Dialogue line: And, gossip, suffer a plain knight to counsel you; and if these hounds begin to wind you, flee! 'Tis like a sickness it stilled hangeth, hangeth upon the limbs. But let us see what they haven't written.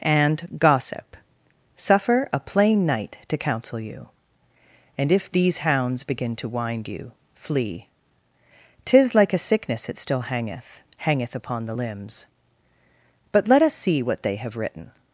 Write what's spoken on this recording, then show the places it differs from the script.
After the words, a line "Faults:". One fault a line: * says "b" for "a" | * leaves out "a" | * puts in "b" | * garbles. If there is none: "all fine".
And, gossip, suffer a plain knight to counsel you; and if these hounds begin to wind you, flee! 'Tis like a sickness it still hangeth, hangeth upon the limbs. But let us see what they have written.
Faults:
* says "still" for "stilled"
* says "have" for "haven't"